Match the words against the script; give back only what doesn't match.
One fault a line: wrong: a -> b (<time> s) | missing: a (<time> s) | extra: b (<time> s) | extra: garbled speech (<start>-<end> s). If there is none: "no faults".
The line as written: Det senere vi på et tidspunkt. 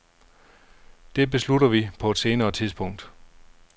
wrong: senere -> beslutter (1.3 s)
extra: senere (2.2 s)